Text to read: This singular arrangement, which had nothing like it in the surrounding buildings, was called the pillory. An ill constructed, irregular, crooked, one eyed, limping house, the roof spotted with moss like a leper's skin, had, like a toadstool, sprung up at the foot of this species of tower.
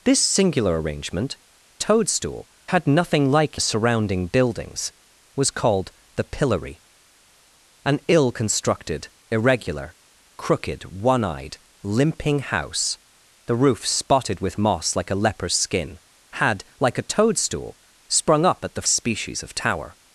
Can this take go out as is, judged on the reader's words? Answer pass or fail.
fail